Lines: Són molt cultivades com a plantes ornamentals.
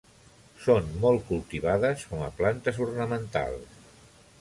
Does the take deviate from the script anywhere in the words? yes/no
no